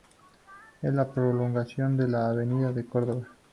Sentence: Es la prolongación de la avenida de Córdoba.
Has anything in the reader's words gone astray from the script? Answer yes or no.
no